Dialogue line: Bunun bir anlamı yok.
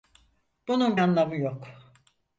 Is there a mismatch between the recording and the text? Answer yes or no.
yes